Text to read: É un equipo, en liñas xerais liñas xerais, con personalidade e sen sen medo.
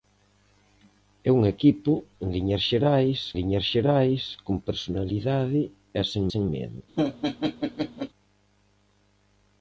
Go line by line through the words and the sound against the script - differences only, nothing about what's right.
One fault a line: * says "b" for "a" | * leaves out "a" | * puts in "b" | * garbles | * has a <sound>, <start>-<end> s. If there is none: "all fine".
* has a laugh, 7.0-8.1 s